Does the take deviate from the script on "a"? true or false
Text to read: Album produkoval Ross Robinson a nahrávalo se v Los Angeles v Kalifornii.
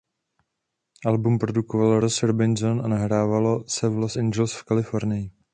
false